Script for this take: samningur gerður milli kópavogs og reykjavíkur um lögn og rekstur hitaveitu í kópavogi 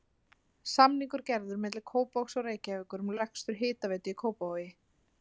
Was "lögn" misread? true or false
true